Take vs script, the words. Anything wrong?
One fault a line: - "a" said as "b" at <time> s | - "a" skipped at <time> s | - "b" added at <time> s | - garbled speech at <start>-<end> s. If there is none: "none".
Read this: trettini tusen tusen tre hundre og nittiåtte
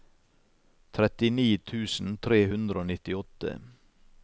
- "tusen" skipped at 2.1 s